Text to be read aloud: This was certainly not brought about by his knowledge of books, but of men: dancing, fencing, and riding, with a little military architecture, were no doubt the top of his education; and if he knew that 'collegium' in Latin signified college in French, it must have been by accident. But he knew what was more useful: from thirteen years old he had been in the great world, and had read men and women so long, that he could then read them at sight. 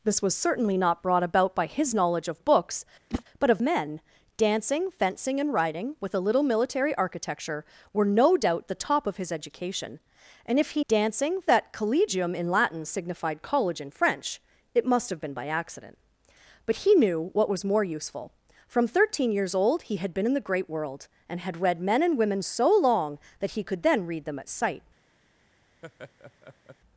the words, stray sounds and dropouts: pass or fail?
fail